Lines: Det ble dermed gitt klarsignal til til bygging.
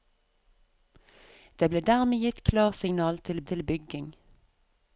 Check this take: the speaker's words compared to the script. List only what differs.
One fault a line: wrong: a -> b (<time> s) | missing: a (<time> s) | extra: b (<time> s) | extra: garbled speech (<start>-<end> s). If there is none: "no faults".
no faults